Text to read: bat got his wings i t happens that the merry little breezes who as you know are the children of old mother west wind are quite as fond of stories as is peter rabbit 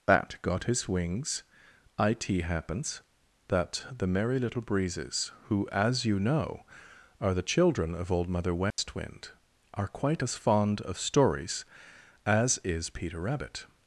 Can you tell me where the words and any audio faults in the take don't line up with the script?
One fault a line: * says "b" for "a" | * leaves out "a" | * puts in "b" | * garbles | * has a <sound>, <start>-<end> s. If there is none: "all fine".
* has a dropout, 8.7-8.8 s